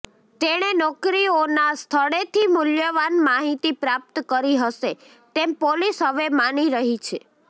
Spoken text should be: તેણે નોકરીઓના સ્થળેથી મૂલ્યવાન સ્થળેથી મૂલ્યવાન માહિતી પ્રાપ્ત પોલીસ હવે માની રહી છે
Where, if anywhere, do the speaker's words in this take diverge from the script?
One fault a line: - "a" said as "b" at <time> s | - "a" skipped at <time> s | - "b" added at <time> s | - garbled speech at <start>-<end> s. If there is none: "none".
- "સ્થળેથી મૂલ્યવાન માહિતી પ્રાપ્ત" said as "માહિતી પ્રાપ્ત કરી હશે તેમ" at 3.2 s